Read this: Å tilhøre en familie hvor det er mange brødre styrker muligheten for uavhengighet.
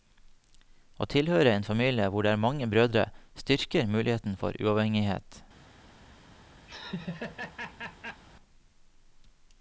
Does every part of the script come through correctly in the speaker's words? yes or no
yes